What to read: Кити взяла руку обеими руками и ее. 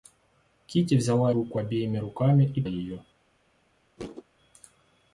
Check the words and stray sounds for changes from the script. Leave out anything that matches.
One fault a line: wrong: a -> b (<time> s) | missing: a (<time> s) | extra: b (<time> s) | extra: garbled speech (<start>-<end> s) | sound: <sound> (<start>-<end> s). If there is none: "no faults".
sound: thud (4.0-4.2 s)